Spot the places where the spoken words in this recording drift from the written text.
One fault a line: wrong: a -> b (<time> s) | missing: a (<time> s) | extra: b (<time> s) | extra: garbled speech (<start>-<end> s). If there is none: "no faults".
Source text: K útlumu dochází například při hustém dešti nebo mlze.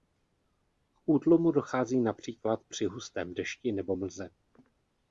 no faults